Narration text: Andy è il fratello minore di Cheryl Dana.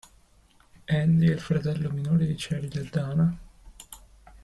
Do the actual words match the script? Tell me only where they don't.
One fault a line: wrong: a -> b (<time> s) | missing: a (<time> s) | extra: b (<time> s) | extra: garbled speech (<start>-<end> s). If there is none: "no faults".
extra: e (2.8 s)